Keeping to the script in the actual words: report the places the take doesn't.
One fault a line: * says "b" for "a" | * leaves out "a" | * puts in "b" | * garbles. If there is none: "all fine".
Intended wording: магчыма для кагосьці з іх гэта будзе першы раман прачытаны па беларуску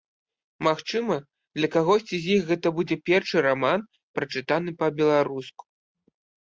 all fine